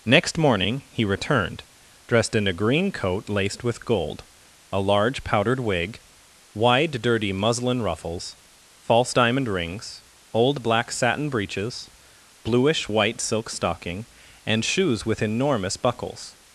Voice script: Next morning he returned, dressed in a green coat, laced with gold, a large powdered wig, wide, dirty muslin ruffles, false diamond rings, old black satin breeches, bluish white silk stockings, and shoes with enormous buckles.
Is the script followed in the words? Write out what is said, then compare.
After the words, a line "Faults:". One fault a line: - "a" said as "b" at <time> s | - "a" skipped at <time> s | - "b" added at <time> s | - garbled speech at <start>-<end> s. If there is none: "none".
Next morning he returned, dressed in a green coat, laced with gold, a large powdered wig, wide, dirty muslin ruffles, false diamond rings, old black satin breeches, bluish white silk stocking, and shoes with enormous buckles.
Faults:
- "stockings" said as "stocking" at 13.5 s